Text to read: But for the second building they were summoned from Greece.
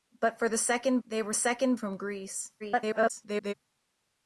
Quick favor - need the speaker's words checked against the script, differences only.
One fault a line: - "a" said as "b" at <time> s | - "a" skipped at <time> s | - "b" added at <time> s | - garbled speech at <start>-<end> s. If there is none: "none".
- "building" skipped at 1.0 s
- "summoned" said as "second" at 1.3 s
- garbled speech at 2.6-3.5 s